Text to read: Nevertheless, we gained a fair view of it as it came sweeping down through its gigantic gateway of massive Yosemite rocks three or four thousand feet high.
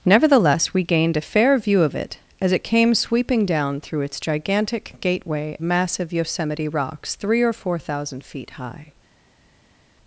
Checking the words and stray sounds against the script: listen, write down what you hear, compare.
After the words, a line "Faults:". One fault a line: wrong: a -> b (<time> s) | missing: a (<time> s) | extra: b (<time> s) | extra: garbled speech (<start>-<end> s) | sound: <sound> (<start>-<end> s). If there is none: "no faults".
Nevertheless, we gained a fair view of it as it came sweeping down through its gigantic gateway massive Yosemite rocks three or four thousand feet high.
Faults:
missing: of (5.6 s)